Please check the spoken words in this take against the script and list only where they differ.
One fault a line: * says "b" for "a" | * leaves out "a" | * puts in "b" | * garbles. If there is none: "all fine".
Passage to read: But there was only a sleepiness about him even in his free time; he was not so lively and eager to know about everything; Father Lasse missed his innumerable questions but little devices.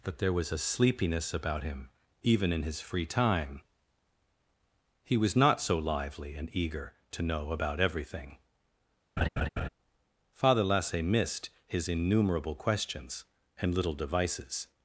* leaves out "only"
* says "and" for "but"